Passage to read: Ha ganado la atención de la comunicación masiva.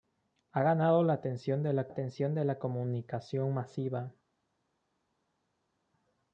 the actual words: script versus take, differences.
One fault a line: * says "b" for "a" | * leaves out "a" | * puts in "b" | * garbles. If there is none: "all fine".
* puts in "atención de la"